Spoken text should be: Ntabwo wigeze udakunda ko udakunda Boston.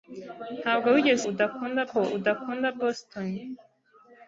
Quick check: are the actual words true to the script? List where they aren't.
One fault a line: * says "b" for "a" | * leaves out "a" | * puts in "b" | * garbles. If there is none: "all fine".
all fine